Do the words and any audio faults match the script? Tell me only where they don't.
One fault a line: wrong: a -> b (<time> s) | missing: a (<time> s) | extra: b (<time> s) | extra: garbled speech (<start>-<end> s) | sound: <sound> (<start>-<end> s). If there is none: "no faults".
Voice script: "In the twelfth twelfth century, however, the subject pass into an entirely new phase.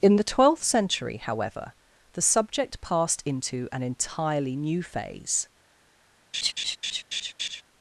missing: twelfth (0.6 s)
wrong: pass -> passed (2.8 s)
sound: laugh (6.3-7.6 s)